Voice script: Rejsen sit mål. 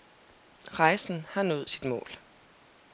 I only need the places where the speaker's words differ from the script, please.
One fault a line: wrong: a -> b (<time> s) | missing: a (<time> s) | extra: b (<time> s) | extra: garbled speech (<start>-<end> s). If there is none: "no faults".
extra: har nået (1.3 s)